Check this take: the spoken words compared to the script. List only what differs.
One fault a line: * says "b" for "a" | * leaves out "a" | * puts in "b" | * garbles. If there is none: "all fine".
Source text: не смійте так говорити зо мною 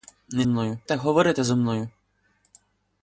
* says "мною" for "смійте"